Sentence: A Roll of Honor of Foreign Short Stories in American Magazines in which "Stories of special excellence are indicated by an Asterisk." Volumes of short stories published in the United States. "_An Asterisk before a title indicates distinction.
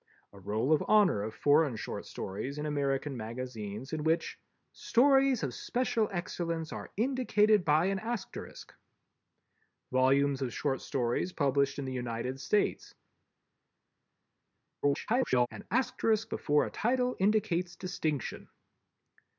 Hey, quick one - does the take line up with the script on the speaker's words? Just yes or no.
no